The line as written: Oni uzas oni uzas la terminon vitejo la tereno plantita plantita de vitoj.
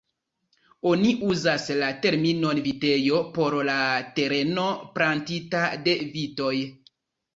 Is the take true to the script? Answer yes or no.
no